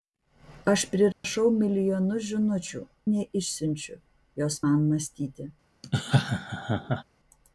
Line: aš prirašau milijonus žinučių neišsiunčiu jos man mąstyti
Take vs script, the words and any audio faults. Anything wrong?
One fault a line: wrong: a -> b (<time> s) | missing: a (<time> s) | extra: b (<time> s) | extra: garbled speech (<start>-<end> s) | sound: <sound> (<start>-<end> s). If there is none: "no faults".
sound: dropout (1.1-1.2 s)
sound: laugh (5.8-7.0 s)